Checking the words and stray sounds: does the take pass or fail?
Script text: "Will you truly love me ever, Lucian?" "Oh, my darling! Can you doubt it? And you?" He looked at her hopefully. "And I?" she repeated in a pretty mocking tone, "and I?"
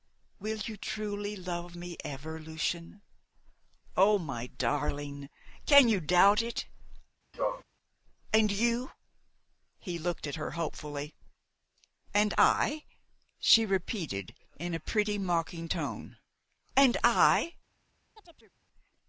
fail